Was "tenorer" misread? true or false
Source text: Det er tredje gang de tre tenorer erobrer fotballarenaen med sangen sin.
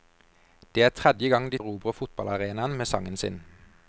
true